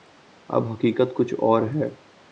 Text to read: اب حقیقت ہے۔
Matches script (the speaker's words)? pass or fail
fail